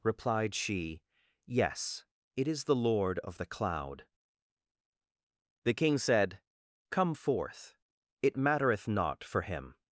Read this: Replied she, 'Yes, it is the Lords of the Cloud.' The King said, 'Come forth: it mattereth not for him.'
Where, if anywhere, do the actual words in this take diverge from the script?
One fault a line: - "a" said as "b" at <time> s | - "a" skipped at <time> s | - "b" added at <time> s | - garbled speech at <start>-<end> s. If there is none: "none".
- "Lords" said as "Lord" at 2.7 s